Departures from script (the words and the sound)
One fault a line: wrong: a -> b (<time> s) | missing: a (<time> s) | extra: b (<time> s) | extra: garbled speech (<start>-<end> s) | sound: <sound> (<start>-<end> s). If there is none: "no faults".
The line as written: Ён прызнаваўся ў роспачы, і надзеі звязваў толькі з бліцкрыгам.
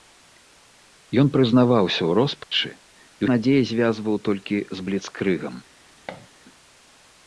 sound: dropout (2.4-2.5 s)
sound: thud (6.1-6.3 s)